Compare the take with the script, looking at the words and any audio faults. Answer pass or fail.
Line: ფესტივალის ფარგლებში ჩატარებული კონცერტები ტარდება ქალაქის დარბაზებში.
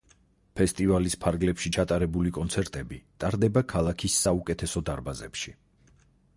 fail